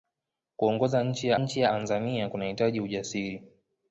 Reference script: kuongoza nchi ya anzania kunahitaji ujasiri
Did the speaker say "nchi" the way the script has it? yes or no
yes